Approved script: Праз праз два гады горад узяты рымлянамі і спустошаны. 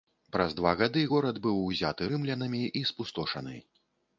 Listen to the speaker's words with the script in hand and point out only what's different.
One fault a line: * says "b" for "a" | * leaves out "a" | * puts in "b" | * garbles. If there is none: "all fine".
* leaves out "праз"
* puts in "быў"